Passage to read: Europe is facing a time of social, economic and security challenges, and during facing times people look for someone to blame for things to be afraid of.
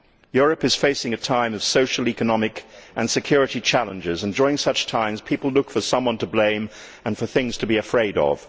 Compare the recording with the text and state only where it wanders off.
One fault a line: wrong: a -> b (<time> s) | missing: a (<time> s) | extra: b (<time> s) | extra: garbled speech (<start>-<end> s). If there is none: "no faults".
wrong: facing -> such (4.6 s)
extra: and (7.0 s)